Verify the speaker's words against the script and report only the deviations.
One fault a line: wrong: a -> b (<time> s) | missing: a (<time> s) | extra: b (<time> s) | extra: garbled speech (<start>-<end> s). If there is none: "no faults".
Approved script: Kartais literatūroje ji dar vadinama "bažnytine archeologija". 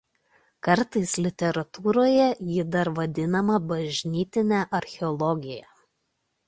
no faults